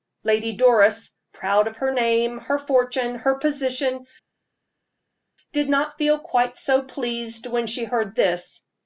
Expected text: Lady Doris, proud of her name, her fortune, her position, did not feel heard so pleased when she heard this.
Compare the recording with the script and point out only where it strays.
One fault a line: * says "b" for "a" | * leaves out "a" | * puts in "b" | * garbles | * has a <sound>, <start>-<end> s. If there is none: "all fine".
* says "quite" for "heard"